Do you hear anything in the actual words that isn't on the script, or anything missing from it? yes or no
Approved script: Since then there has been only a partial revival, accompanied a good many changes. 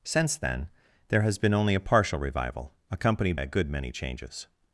no